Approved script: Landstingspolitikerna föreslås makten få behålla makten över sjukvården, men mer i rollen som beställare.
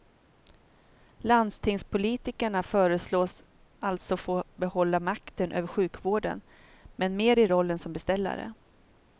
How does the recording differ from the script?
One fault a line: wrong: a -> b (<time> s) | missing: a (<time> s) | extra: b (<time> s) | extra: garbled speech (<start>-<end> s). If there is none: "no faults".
wrong: makten -> alltså (3.8 s)